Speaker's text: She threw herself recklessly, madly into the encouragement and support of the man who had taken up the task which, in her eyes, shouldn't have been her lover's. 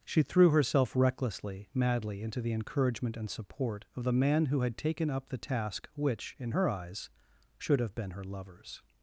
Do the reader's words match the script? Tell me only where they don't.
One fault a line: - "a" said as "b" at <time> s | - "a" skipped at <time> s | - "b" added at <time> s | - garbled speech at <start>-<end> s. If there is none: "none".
- "shouldn't" said as "should" at 7.6 s